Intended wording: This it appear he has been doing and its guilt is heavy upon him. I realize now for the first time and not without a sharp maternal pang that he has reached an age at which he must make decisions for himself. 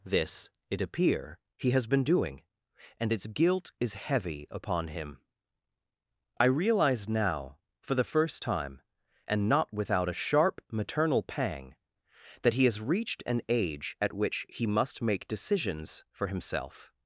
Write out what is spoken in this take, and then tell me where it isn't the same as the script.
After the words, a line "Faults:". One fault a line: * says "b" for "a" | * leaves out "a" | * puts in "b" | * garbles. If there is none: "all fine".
This it appear he has been doing and its guilt is heavy upon him. I realize now for the first time and not without a sharp maternal pang that he has reached an age at which he must make decisions for himself.
Faults:
all fine